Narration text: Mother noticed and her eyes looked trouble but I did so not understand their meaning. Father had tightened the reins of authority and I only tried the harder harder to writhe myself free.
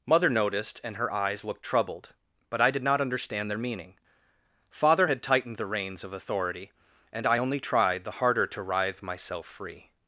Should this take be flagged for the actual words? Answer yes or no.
yes